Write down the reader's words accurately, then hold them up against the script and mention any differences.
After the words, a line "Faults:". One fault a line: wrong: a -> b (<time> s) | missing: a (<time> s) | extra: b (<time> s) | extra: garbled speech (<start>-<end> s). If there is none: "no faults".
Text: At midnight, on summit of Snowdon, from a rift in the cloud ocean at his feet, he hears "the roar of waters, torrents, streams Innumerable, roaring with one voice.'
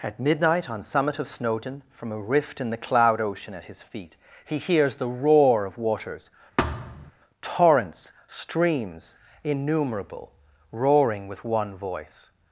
At midnight, on summit of Snowdon, from a rift in the cloud ocean at his feet, he hears "the roar of waters, torrents, streams Innumerable, roaring with one voice.'
Faults:
no faults